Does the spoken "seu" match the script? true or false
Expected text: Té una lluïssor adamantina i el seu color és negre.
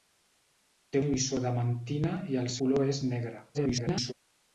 false